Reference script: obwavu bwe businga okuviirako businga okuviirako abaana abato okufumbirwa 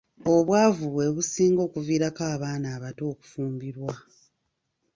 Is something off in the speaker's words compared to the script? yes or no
yes